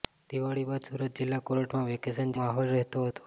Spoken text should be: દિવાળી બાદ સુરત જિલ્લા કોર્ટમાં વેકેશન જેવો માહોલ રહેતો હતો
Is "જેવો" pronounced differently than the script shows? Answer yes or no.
yes